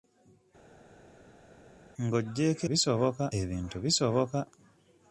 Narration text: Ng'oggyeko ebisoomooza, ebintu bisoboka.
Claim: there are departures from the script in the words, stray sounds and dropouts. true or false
true